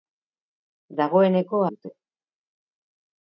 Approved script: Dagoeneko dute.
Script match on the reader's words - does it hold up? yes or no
yes